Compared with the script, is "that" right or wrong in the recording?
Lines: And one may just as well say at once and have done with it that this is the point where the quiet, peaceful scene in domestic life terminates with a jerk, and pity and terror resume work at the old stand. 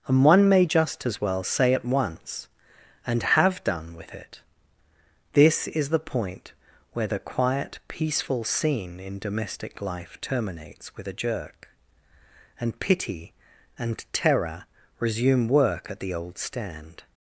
wrong